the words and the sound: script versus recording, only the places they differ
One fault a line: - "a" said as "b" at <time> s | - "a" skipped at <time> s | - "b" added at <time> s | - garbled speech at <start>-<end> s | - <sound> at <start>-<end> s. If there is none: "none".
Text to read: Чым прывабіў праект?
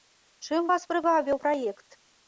- "вас" added at 0.7 s